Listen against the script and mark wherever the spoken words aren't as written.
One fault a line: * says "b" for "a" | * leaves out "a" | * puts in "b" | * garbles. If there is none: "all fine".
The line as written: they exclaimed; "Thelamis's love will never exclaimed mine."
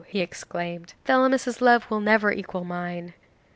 * says "he" for "they"
* says "equal" for "exclaimed"